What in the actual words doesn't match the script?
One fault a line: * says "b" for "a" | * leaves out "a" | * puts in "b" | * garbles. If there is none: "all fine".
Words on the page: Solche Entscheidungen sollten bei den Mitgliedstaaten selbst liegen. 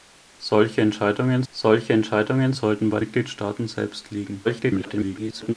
* puts in "solche Entscheidungen"
* leaves out "den"
* garbles